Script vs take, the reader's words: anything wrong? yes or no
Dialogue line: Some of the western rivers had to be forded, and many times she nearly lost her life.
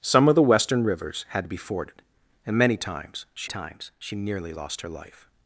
yes